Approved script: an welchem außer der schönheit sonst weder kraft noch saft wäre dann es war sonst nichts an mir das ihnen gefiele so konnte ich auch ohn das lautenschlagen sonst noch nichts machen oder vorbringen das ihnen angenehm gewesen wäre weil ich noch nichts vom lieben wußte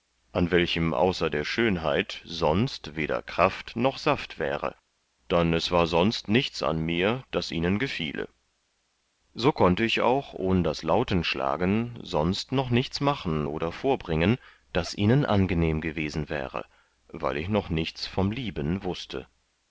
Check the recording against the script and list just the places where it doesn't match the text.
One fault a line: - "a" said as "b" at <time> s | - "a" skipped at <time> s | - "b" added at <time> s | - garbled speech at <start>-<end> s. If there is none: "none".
none